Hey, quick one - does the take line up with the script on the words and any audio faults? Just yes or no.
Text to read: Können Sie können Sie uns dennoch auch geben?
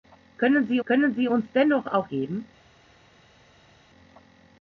yes